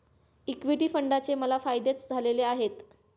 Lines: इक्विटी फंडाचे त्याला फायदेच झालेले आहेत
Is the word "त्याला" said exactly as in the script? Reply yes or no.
no